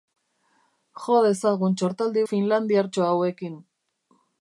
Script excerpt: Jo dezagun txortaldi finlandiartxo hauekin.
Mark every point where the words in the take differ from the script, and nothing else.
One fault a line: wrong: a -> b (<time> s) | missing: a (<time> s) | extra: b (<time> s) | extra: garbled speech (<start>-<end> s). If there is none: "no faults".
no faults